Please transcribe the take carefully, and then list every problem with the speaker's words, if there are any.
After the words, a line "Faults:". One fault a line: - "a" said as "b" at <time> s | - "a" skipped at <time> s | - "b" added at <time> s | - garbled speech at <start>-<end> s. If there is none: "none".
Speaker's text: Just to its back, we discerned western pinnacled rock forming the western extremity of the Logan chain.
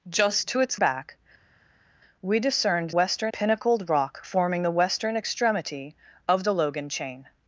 Just to its back, we discerned western pinnacled rock forming the western extremity of the Logan chain.
Faults:
none